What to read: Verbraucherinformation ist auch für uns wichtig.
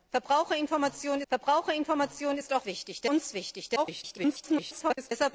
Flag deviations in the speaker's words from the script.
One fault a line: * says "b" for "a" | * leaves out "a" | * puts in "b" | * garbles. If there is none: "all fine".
* puts in "verbraucherinformation"
* says "wichtig" for "für"
* garbles